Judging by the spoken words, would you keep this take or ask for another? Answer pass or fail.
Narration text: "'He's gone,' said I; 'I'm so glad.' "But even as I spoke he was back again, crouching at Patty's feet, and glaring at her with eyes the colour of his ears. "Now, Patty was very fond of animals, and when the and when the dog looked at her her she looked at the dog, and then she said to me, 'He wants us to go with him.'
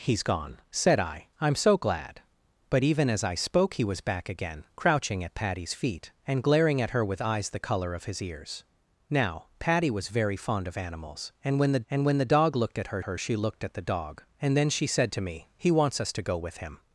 pass